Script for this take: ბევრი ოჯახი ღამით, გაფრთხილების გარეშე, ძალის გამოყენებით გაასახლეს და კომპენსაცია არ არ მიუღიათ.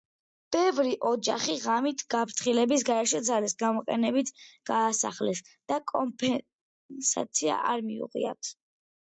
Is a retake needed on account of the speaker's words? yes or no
yes